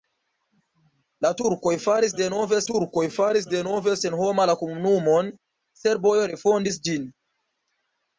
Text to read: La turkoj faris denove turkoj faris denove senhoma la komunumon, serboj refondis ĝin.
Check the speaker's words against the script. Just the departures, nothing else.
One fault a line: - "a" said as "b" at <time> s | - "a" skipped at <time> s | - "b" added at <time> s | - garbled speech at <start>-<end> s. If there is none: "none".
none